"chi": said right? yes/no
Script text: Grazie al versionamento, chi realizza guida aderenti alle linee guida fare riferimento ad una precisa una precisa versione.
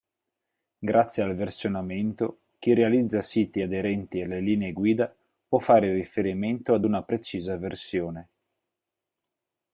yes